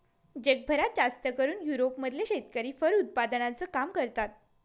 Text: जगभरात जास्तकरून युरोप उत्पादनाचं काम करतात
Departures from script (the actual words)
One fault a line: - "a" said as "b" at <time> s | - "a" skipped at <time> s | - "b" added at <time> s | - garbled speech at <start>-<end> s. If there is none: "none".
- "मधले शेतकरी फर" added at 2.0 s